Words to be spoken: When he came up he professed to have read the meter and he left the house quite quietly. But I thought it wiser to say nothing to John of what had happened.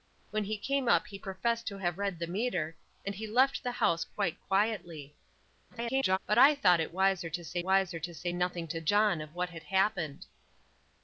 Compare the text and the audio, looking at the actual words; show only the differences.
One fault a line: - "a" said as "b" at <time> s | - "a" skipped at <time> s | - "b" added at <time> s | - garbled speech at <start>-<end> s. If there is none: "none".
- garbled speech at 5.7-6.2 s
- "wiser to say" added at 7.6 s